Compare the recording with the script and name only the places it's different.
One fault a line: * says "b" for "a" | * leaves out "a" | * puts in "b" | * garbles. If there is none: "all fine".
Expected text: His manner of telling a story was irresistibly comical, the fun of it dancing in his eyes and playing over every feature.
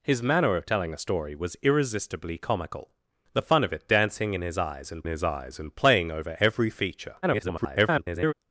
* puts in "his eyes and"
* garbles